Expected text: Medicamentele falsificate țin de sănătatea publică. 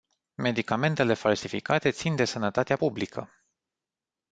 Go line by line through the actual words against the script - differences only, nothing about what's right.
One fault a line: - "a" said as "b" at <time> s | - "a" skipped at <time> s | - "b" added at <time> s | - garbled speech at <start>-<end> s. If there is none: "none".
none